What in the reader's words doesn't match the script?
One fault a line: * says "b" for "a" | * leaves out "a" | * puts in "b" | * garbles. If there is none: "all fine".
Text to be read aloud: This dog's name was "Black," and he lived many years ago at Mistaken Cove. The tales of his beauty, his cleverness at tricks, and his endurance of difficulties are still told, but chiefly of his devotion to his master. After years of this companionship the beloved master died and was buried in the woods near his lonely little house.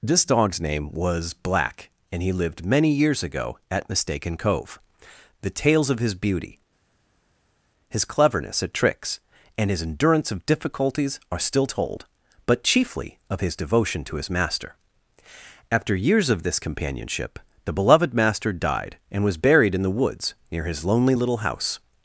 all fine